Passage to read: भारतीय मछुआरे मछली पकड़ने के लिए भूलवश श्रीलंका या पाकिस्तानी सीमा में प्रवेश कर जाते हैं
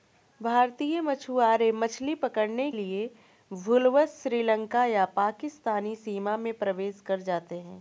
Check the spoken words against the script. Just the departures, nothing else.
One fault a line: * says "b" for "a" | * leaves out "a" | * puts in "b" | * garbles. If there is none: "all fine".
* leaves out "के"